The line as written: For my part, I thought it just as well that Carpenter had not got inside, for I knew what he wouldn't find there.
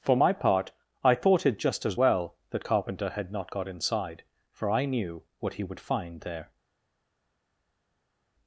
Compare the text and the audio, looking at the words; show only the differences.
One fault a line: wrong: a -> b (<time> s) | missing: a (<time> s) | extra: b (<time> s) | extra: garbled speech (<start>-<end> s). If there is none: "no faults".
wrong: wouldn't -> would (5.6 s)